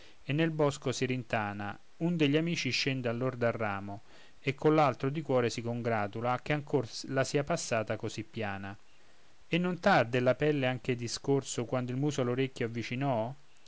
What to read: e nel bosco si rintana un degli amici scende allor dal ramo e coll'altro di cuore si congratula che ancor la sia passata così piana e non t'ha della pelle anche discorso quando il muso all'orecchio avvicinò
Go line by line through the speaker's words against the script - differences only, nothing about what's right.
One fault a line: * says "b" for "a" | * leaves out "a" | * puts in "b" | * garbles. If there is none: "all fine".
all fine